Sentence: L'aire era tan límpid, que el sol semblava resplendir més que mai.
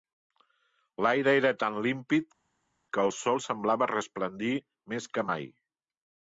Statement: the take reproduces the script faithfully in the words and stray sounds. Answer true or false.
true